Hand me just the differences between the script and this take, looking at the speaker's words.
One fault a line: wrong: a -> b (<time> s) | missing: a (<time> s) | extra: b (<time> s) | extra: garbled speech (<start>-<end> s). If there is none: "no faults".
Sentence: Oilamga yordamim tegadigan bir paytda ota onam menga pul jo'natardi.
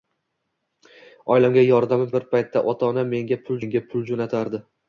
missing: tegadigan (2.1 s)
extra: menga pul (3.6 s)